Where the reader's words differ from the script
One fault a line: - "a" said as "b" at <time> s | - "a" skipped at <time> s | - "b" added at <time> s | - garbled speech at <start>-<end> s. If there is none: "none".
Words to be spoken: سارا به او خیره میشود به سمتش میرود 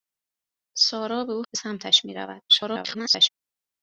- "خیره میشود" skipped at 1.4 s
- garbled speech at 2.5-3.3 s